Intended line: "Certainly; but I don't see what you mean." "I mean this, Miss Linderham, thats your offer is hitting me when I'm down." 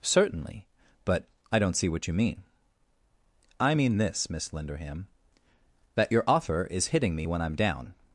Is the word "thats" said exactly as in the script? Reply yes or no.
no